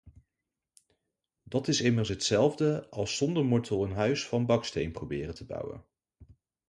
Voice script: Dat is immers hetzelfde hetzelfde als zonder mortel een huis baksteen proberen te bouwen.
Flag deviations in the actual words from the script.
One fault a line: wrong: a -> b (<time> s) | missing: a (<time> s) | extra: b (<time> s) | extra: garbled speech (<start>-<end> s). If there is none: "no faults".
missing: hetzelfde (2.9 s)
extra: van (4.3 s)